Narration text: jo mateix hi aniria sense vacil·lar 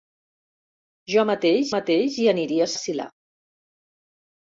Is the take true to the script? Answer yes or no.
no